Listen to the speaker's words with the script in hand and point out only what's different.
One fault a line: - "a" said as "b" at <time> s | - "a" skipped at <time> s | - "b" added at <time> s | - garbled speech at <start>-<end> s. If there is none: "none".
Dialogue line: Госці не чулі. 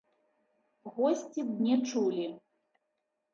none